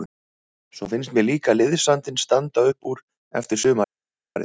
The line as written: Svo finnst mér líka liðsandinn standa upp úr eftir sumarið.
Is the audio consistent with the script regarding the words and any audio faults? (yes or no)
yes